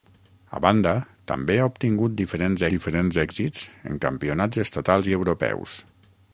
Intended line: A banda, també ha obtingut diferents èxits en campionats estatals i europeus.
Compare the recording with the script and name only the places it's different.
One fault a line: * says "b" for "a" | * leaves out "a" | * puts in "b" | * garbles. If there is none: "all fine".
* puts in "diferents"